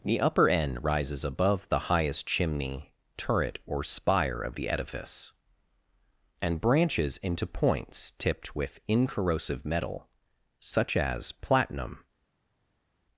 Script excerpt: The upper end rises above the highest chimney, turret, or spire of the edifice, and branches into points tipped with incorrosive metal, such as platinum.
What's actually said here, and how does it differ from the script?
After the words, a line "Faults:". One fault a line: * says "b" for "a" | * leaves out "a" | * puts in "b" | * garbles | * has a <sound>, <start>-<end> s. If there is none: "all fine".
The upper end rises above the highest chimney, turret, or spire of the edifice, and branches into points tipped with incorrosive metal, such as platinum.
Faults:
all fine